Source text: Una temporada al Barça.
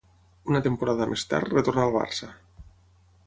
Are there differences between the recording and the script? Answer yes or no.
yes